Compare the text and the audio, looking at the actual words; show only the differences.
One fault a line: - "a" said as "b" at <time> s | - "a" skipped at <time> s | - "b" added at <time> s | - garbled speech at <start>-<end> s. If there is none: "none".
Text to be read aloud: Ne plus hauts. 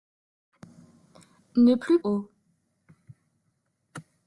none